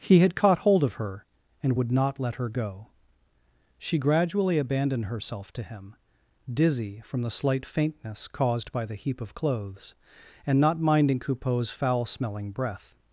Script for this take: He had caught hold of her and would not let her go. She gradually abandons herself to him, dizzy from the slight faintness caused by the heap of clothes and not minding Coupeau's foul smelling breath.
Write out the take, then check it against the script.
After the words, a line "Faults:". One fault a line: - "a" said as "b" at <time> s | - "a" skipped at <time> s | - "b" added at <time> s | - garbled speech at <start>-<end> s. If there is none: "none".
He had caught hold of her and would not let her go. She gradually abandoned herself to him, dizzy from the slight faintness caused by the heap of clothes and not minding Coupeau's foul smelling breath.
Faults:
- "abandons" said as "abandoned" at 4.6 s